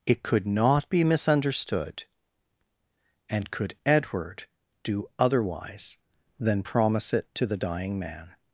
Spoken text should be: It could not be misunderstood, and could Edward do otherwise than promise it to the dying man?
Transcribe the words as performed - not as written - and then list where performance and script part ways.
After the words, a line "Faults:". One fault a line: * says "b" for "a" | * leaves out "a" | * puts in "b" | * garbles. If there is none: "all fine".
It could not be misunderstood, and could Edward do otherwise than promise it to the dying man?
Faults:
all fine